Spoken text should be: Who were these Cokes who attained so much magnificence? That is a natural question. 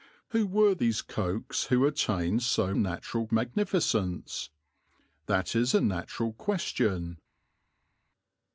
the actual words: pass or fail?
fail